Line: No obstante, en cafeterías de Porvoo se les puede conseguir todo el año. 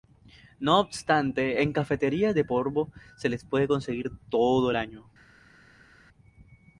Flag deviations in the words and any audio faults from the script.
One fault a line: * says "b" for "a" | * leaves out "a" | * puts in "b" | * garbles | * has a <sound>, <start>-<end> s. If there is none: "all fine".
all fine